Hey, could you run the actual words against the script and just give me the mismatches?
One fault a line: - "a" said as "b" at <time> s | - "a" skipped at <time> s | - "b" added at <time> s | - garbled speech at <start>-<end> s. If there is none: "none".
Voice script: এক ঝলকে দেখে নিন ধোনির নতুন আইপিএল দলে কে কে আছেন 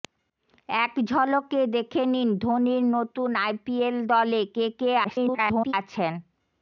- garbled speech at 5.0-5.7 s